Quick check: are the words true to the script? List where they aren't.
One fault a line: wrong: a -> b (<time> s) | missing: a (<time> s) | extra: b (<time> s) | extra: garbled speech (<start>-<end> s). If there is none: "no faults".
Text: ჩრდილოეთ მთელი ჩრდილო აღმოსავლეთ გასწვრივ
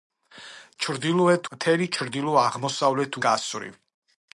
no faults